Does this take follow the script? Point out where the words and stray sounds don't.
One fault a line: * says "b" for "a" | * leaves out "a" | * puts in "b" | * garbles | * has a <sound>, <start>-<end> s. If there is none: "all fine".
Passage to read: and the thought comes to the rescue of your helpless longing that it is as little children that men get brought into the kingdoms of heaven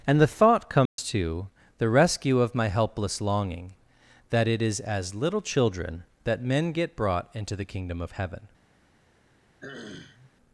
* has a dropout, 0.9-1.0 s
* says "my" for "your"
* says "kingdom" for "kingdoms"
* has a throat clearing, 9.6-10.3 s